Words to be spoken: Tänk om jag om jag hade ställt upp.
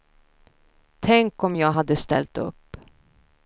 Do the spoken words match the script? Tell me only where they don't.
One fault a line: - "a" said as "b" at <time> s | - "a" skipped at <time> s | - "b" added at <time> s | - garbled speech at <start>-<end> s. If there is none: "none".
- "om jag" skipped at 1.7 s